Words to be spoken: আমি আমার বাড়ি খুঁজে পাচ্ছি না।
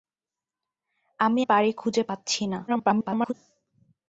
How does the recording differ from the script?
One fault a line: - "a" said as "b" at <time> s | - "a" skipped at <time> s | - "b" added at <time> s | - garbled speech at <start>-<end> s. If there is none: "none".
- "আমার" skipped at 1.4 s
- garbled speech at 2.7-3.3 s